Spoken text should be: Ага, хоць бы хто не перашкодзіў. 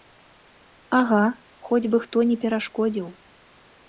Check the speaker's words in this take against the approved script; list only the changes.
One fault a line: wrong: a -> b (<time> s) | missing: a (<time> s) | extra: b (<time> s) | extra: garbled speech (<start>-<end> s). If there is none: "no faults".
no faults